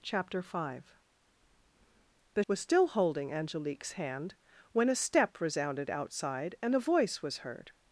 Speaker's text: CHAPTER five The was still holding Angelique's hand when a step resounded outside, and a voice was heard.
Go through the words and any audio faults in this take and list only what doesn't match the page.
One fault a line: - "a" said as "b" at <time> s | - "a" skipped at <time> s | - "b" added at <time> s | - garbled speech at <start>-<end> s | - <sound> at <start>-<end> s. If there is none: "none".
none